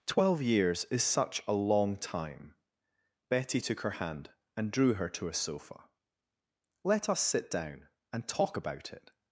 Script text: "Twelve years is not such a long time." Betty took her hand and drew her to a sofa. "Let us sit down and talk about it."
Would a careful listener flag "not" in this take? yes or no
yes